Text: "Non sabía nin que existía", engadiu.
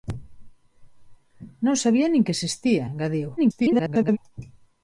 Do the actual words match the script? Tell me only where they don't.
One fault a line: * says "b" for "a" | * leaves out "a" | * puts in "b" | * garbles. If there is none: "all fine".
* garbles